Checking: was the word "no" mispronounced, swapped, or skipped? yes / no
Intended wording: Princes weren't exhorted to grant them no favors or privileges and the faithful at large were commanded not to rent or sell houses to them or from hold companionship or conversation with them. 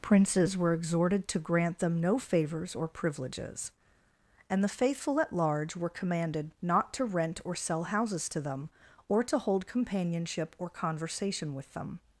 no